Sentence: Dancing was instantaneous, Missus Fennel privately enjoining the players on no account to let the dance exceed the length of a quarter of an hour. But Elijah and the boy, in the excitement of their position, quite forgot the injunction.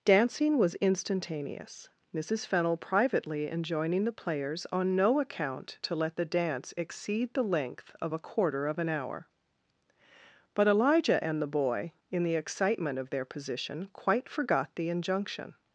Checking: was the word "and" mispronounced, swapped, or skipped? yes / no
no